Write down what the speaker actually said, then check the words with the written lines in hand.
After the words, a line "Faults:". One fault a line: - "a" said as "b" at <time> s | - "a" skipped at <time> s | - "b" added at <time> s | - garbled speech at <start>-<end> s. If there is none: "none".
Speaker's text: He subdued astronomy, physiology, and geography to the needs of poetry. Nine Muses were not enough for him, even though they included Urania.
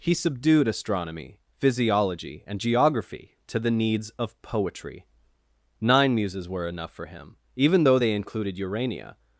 He subdued astronomy, physiology, and geography to the needs of poetry. Nine Muses were enough for him, even though they included Urania.
Faults:
- "not" skipped at 6.7 s